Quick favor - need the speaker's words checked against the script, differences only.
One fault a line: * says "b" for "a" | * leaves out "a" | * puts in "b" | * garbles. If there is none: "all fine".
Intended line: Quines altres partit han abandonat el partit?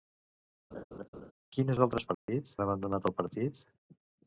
all fine